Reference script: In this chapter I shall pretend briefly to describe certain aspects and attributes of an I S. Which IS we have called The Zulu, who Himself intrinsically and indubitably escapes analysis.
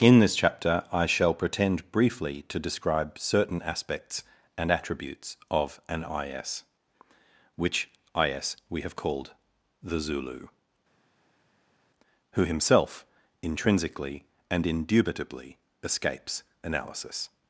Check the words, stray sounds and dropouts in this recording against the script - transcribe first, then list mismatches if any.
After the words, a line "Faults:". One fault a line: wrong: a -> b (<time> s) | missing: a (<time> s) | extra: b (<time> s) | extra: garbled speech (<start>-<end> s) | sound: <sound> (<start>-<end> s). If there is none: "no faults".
In this chapter I shall pretend briefly to describe certain aspects and attributes of an I S. Which IS we have called The Zulu, who Himself intrinsically and indubitably escapes analysis.
Faults:
no faults